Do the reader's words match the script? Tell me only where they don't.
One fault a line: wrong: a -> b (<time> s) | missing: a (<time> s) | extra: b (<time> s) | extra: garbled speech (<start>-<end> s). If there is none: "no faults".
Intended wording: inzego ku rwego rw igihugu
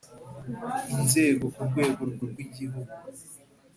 extra: rw (2.3 s)